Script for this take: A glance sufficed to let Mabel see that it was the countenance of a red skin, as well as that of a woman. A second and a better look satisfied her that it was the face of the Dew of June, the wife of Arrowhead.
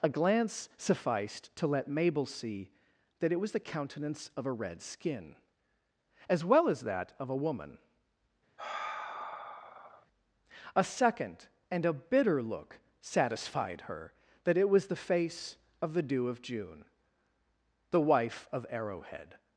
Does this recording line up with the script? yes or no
no